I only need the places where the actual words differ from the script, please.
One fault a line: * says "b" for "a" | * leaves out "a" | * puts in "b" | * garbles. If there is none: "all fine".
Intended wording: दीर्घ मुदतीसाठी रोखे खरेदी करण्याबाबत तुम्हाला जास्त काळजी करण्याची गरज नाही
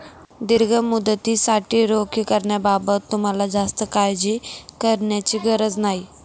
* leaves out "खरेदी"